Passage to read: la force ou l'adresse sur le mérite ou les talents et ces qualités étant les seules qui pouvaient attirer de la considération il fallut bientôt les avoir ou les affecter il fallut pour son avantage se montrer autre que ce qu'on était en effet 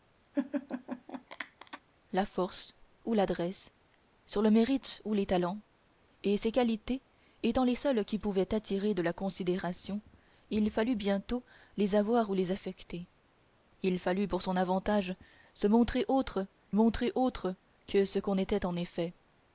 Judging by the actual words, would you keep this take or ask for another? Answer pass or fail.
fail